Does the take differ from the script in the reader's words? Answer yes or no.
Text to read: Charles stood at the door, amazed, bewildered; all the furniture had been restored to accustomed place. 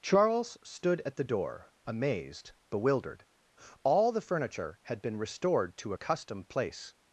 no